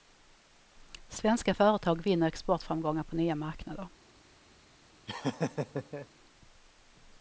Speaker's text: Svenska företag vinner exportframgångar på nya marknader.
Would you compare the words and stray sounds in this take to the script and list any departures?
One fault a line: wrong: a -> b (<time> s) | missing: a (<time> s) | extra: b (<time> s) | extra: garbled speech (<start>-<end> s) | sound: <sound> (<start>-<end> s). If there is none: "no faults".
sound: laugh (5.1-6.1 s)